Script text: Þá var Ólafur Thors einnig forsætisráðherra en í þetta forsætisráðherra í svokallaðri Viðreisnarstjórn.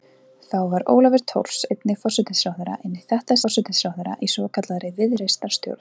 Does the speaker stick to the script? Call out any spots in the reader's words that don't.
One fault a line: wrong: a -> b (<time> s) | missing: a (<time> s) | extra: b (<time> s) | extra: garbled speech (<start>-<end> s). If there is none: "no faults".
no faults